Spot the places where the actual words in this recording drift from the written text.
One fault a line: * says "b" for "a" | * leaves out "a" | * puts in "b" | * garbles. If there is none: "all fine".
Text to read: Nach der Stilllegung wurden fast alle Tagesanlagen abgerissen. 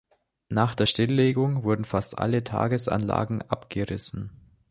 all fine